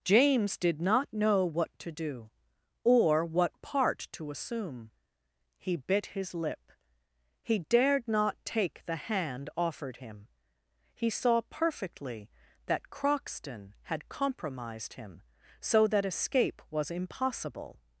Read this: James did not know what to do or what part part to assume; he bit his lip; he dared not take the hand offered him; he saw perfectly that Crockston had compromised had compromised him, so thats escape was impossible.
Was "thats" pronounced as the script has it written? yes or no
no